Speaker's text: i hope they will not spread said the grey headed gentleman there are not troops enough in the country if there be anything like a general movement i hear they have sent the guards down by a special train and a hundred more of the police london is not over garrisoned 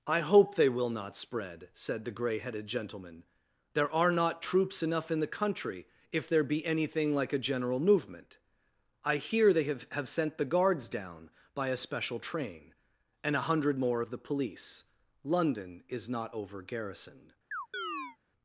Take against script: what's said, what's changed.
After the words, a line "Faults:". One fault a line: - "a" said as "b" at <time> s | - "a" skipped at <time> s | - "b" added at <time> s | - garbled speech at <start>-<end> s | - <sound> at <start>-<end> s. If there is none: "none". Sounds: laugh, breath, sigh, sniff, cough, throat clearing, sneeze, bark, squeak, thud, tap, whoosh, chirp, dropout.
i hope they will not spread said the grey headed gentleman there are not troops enough in the country if there be anything like a general movement i hear they have have sent the guards down by a special train and a hundred more of the police london is not over garrisoned
Faults:
- "have" added at 9.9 s
- chirp at 17.5-18.2 s